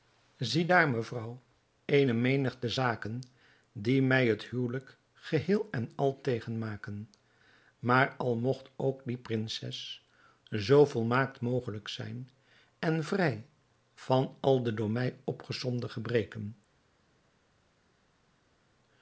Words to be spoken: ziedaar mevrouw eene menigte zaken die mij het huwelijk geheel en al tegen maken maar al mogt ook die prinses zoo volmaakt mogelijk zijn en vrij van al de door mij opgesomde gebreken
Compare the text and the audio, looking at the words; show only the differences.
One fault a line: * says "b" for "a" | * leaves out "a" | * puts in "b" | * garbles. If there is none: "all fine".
all fine